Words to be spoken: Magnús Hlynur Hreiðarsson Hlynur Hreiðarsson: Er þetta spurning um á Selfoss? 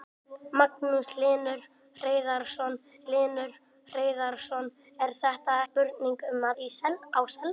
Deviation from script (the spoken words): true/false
false